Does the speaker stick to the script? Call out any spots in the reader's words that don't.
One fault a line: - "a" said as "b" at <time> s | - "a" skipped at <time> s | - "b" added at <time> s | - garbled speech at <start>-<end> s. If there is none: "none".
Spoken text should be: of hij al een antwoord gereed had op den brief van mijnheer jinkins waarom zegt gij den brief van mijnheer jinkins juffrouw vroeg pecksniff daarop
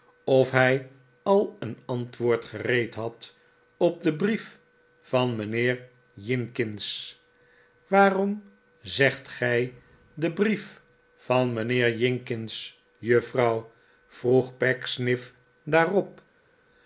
none